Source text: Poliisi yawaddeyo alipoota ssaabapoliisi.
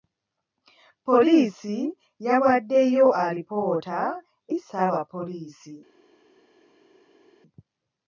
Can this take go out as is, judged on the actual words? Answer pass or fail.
pass